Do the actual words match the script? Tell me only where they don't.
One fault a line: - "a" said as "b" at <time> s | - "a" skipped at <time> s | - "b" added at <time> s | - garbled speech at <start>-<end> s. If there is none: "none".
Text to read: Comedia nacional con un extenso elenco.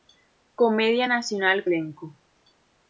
- "con un extenso" skipped at 1.7 s